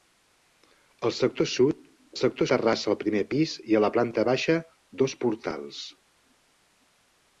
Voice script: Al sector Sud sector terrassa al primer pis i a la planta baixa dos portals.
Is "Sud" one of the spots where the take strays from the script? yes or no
no